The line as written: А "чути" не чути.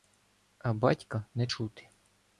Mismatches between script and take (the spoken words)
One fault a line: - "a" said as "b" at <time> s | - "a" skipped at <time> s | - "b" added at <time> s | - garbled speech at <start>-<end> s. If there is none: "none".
- "чути" said as "батька" at 0.7 s